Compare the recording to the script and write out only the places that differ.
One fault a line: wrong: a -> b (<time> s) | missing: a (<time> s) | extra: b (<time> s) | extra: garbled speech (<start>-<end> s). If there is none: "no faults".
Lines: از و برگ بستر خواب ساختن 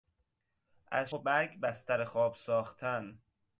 no faults